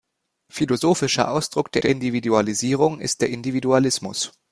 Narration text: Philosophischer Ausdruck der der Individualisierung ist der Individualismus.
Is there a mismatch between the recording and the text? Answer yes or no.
no